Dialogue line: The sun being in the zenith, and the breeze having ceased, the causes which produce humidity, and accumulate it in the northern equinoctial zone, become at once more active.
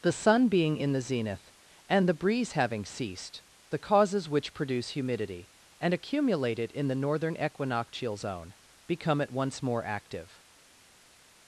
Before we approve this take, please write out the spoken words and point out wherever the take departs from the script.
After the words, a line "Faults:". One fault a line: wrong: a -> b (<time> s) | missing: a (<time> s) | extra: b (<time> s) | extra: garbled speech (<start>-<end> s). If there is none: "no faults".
The sun being in the zenith, and the breeze having ceased, the causes which produce humidity, and accumulate it in the northern equinoctial zone, become at once more active.
Faults:
no faults